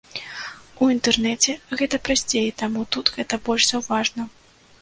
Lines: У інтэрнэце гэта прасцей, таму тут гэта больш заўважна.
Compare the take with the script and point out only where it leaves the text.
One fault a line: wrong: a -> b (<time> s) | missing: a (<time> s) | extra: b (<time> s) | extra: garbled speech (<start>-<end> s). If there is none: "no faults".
no faults